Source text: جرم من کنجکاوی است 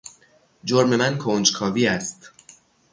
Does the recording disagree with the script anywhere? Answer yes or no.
no